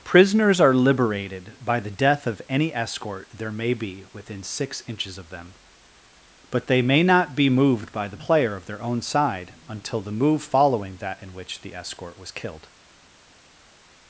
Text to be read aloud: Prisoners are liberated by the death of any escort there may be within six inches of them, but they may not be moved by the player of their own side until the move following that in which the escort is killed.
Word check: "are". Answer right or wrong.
right